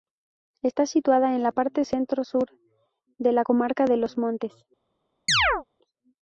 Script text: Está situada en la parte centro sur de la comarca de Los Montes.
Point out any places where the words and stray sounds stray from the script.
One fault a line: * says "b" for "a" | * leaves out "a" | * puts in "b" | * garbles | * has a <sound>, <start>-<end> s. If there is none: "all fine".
* has a chirp, 5.3-5.6 s